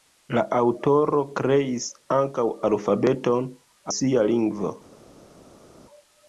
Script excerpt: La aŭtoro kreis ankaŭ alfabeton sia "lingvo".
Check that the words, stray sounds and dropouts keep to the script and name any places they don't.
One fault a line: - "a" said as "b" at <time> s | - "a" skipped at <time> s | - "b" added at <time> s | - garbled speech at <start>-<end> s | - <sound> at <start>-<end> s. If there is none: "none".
none